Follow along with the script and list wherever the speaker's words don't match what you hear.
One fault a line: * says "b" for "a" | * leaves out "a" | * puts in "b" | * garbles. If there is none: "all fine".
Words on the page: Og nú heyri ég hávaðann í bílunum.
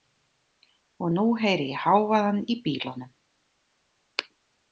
all fine